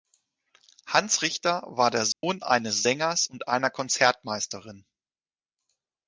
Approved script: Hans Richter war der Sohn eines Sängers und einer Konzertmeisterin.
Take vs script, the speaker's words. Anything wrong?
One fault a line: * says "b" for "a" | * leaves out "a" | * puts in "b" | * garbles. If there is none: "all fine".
all fine